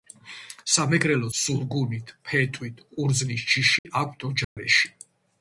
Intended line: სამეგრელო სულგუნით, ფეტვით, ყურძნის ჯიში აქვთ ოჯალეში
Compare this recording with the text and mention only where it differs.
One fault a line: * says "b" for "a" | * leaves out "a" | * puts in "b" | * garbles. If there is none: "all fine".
all fine